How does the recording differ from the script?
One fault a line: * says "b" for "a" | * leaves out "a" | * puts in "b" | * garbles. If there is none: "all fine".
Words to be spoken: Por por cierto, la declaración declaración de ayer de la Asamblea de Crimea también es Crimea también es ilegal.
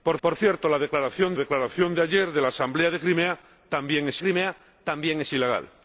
all fine